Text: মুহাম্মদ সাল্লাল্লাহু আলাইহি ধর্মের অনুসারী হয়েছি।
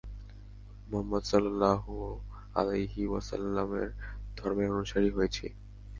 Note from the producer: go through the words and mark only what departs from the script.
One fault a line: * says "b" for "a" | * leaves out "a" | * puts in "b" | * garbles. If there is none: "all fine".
* puts in "ওয়াসাল্লামের"